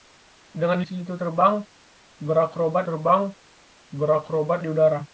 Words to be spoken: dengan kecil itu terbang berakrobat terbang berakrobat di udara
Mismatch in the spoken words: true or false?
false